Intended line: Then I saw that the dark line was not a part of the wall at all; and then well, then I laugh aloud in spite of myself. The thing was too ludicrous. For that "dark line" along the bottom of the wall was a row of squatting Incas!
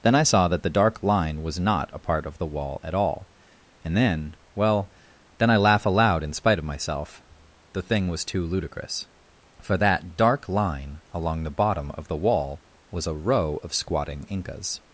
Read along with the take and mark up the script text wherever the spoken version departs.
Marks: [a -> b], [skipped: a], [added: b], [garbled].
Then I saw that the dark line was not a part of the wall at all; and then well, then I laugh aloud in spite of myself. The thing was too ludicrous. For that "dark line" along the bottom of the wall was a row of squatting Incas!